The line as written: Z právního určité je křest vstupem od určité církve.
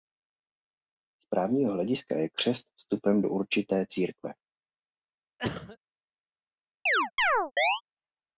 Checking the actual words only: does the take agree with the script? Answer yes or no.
no